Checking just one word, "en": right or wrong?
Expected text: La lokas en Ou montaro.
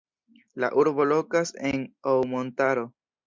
right